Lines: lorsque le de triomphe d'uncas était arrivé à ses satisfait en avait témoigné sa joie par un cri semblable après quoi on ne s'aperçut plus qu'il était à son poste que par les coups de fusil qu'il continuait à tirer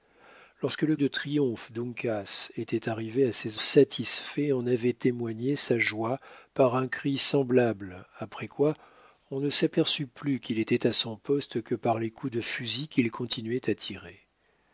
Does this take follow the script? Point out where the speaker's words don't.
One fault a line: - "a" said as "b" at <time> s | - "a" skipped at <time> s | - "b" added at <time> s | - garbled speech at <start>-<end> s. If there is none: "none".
none